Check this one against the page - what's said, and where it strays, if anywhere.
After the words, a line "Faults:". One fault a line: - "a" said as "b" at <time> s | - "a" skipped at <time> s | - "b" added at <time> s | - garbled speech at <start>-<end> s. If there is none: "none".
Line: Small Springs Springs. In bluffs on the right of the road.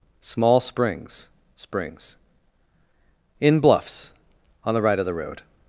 Small Springs Springs. In bluffs on the right of the road.
Faults:
none